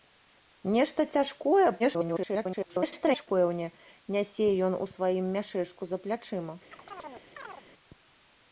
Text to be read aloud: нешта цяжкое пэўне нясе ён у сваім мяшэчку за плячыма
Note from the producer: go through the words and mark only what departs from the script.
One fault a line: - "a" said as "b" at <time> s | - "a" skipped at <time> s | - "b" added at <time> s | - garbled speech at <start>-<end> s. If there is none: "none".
- garbled speech at 1.8-3.3 s